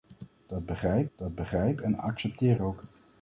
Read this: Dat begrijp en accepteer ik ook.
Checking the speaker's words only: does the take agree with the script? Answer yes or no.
no